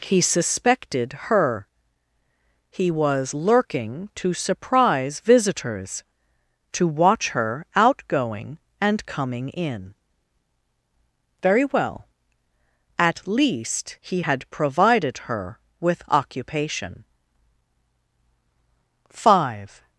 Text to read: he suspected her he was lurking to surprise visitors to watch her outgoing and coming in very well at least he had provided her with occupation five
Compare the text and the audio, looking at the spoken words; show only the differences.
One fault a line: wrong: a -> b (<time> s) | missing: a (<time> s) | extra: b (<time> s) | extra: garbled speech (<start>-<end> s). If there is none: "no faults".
no faults